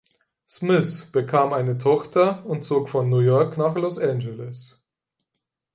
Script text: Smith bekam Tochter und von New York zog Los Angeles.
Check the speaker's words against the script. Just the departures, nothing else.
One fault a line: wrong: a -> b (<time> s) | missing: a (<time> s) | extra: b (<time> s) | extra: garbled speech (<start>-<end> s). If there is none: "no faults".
extra: eine (1.5 s)
extra: zog (2.6 s)
wrong: zog -> nach (3.5 s)